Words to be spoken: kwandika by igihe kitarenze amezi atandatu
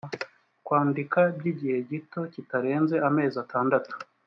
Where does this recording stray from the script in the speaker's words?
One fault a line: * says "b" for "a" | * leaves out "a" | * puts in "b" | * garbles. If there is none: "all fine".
* puts in "gito"